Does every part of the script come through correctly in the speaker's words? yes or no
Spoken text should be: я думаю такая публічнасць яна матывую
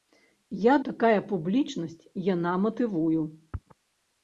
no